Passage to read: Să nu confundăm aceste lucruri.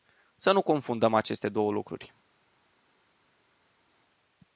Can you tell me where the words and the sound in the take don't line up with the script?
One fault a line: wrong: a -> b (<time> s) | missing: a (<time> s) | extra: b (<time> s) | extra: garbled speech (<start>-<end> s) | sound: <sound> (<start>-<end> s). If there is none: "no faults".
extra: două (1.5 s)